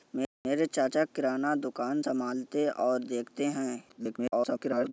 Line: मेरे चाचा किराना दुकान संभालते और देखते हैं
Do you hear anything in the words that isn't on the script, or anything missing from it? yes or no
yes